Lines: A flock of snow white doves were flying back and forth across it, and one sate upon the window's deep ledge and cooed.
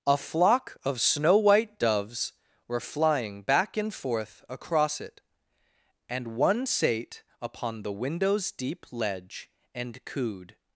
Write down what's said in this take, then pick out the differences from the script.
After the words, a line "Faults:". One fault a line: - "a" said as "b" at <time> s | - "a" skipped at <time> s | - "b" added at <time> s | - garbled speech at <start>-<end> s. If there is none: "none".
A flock of snow white doves were flying back and forth across it, and one sate upon the window's deep ledge and cooed.
Faults:
none